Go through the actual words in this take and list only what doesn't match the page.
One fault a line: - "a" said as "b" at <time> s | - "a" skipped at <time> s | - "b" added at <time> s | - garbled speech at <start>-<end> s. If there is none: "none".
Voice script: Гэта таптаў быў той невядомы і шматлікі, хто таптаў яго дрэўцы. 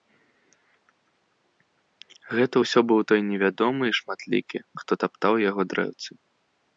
- "таптаў" said as "ўсё" at 2.6 s